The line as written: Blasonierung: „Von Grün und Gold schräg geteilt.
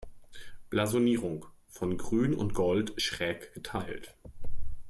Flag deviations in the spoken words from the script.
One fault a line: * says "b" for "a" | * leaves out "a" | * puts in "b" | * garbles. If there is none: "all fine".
all fine